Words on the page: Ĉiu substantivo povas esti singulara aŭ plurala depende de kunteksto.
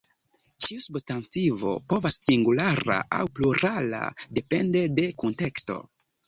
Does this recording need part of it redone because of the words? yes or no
yes